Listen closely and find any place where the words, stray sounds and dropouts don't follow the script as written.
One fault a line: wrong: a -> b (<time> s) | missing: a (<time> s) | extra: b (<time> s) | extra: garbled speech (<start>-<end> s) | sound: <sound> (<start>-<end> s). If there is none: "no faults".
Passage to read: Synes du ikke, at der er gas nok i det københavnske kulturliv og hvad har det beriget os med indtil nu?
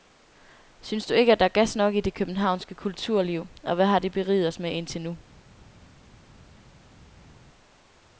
no faults